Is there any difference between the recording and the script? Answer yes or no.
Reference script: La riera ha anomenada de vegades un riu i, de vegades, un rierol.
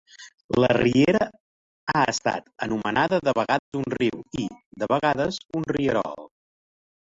yes